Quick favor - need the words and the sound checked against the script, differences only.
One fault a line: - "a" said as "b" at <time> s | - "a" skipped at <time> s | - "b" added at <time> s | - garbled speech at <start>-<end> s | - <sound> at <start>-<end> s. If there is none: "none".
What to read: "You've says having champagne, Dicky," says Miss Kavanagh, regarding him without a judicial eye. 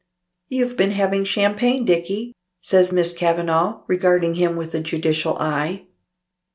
- "says" said as "been" at 0.8 s
- "without" said as "with" at 4.6 s